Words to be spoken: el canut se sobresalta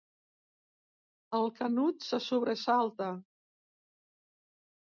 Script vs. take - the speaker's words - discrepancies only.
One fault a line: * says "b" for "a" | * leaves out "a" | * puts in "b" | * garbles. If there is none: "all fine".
all fine